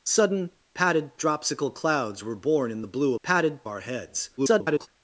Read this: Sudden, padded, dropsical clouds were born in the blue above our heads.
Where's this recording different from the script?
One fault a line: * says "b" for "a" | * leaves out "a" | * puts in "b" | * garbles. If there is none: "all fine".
* says "padded" for "above"
* garbles